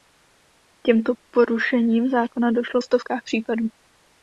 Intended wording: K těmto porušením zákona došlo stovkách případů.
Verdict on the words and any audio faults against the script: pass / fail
pass